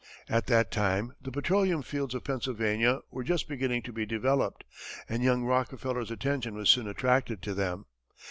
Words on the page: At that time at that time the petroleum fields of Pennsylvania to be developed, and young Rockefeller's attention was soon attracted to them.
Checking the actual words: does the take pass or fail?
fail